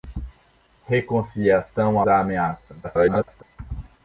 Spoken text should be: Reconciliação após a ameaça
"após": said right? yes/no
no